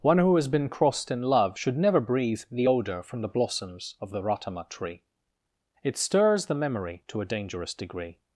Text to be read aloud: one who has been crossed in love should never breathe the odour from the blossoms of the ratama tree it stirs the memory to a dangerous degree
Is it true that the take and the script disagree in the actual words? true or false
false